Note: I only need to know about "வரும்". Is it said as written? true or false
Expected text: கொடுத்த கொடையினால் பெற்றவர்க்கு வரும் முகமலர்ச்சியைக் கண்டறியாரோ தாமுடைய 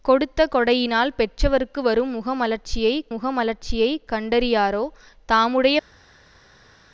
true